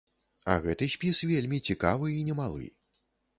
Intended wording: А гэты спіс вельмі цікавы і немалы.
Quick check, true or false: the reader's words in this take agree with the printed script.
true